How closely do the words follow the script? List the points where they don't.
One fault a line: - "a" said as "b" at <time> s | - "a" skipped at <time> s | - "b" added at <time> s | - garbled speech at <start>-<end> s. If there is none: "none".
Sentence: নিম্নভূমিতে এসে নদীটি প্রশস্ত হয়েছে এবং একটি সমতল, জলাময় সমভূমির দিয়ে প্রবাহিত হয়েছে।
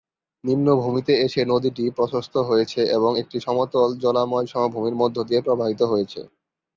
- "মধ্য" added at 5.0 s